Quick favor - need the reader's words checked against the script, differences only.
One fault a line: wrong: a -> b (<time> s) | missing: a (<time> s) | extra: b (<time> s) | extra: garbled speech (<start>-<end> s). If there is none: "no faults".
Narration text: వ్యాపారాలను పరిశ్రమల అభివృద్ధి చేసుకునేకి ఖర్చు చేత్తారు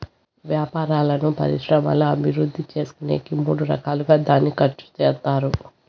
extra: మూడు రకాలుగా దాన్ని (3.4 s)